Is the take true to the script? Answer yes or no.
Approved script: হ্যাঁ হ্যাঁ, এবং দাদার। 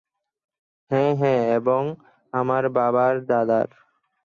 no